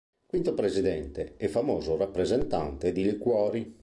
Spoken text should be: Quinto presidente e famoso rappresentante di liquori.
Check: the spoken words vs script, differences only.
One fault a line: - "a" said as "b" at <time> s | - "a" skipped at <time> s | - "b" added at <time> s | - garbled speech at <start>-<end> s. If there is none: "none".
none